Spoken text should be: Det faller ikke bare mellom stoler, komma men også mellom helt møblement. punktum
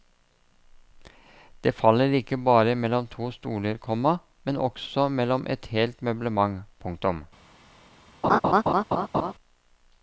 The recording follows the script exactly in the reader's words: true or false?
false